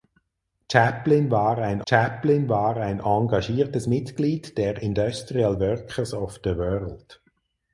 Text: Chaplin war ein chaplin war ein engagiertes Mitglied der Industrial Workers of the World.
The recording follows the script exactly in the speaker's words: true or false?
true